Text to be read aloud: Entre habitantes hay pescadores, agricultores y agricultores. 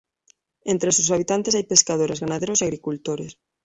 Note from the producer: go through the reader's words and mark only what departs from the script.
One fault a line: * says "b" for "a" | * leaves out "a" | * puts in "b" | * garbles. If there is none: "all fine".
* puts in "sus"
* says "ganaderos" for "agricultores"